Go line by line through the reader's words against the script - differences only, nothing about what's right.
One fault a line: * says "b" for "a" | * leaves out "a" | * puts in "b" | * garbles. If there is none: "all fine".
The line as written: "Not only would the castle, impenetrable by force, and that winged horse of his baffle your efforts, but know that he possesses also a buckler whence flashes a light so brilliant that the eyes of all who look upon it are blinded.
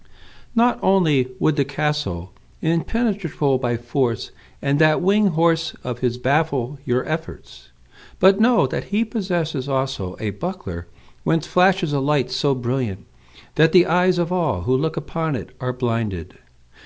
all fine